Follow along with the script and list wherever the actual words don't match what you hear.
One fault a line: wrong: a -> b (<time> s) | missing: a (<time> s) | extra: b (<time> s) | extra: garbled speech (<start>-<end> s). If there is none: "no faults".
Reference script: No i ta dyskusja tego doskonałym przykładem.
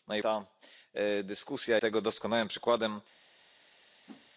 no faults